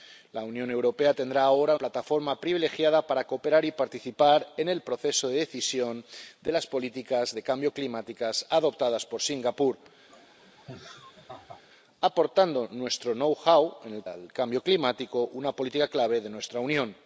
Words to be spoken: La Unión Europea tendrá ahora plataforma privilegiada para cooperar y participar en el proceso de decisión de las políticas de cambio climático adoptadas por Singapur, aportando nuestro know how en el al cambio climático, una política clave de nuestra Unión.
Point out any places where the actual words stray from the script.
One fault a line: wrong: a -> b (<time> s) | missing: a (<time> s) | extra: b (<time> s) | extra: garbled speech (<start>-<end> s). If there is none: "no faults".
no faults